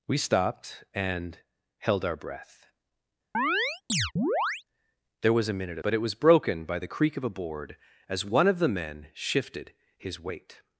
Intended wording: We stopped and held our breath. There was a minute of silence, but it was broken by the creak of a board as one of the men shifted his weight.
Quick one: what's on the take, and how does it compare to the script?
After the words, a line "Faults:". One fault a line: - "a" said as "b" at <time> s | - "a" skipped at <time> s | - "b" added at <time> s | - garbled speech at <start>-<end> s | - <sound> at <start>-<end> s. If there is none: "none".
We stopped and held our breath. There was a minute of but it was broken by the creak of a board as one of the men shifted his weight.
Faults:
- chirp at 3.3-4.6 s
- "silence" skipped at 5.8 s